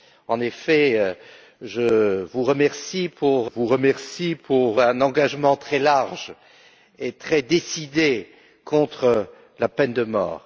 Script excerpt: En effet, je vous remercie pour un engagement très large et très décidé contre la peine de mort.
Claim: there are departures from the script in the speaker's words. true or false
true